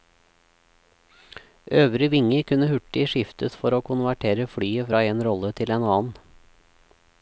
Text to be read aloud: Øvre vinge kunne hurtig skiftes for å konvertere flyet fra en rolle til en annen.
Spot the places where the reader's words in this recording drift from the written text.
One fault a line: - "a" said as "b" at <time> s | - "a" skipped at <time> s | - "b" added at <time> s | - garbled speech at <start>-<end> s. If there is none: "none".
none